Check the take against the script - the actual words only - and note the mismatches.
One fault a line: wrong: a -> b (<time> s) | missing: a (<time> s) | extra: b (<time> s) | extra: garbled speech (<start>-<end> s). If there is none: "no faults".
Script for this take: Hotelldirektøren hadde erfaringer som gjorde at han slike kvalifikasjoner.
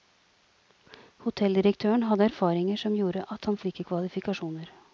no faults